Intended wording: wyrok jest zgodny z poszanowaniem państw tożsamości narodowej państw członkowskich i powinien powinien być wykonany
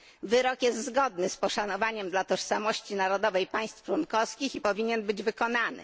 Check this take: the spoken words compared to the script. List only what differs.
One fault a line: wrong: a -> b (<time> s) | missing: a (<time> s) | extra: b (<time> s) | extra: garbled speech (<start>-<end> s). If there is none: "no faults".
wrong: państw -> dla (2.1 s)
missing: powinien (5.0 s)